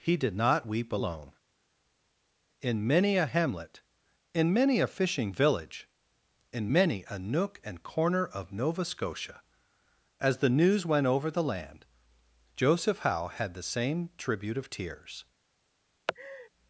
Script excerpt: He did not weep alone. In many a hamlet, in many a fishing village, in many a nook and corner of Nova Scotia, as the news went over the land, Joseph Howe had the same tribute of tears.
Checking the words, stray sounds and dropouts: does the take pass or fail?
fail